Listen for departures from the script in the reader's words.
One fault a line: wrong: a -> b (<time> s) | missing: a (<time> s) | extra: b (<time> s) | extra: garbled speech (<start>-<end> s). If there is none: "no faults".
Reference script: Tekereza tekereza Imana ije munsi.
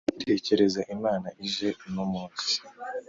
missing: tekereza (0.8 s)
extra: uno (1.9 s)